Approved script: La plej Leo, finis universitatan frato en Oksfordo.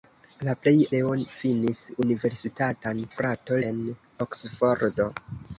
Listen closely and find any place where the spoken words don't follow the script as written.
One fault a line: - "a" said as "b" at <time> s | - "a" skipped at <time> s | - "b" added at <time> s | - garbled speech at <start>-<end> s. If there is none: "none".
none